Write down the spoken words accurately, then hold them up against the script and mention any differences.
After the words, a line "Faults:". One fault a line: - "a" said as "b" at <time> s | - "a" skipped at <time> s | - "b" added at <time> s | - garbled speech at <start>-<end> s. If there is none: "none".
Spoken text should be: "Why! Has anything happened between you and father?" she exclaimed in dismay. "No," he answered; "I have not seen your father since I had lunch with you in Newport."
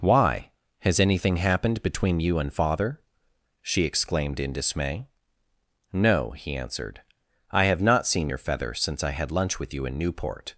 "Why! Has anything happened between you and father?" she exclaimed in dismay. "No," he answered; "I have not seen your feather since I had lunch with you in Newport."
Faults:
- "father" said as "feather" at 8.4 s